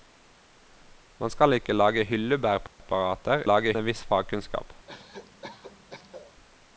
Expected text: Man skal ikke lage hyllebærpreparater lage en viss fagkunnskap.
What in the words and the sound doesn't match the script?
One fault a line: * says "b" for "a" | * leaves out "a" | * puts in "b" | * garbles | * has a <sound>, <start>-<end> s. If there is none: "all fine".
* has a dropout, 2.7-2.8 s
* has a cough, 4.9-6.3 s